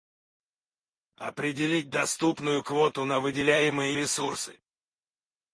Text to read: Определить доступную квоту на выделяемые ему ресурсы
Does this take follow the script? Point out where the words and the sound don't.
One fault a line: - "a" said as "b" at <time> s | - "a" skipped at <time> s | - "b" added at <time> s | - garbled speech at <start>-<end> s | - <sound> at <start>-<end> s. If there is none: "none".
- "ему" skipped at 4.0 s